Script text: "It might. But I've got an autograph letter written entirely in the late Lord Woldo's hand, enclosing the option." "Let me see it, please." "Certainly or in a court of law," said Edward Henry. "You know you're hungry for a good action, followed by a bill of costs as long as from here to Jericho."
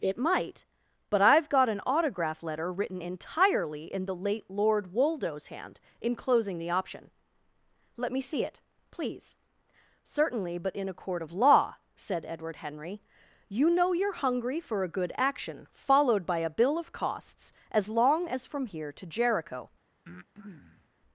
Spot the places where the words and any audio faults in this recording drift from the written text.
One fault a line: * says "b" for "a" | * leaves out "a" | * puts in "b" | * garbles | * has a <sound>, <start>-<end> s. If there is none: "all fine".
* says "but" for "or"
* has a breath, 20.0-20.9 s